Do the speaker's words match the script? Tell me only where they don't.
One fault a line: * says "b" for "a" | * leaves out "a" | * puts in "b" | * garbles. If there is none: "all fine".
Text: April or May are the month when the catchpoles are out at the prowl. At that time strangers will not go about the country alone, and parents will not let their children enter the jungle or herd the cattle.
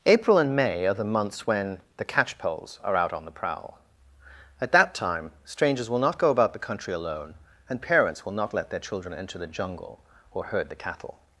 * says "and" for "or"
* says "months" for "month"
* says "on" for "at"